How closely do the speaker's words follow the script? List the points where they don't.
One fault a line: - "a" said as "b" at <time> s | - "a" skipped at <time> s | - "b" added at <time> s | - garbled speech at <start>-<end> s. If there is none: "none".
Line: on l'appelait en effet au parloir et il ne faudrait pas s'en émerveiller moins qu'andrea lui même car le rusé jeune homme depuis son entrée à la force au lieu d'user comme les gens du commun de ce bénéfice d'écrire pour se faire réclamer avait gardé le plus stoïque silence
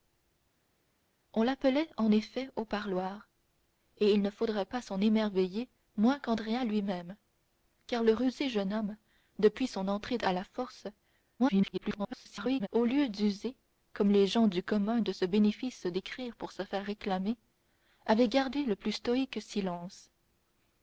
- garbled speech at 11.4-12.7 s